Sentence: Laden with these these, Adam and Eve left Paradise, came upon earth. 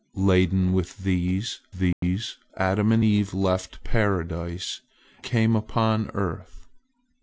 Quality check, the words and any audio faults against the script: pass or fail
fail